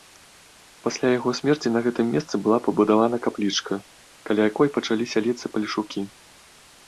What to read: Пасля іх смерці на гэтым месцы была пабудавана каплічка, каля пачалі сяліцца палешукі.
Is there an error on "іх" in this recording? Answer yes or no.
yes